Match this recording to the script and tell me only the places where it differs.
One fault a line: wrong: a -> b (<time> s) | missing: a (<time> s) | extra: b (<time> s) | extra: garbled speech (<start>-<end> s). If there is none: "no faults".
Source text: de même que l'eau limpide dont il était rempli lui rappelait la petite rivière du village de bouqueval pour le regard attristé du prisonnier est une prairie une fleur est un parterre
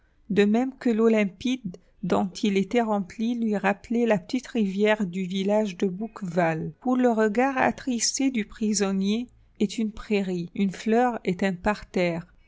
no faults